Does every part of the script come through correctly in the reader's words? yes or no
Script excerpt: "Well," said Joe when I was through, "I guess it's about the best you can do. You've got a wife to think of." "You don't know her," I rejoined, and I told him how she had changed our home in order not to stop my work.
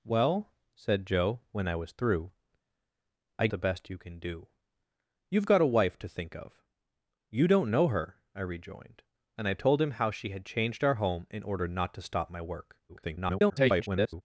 no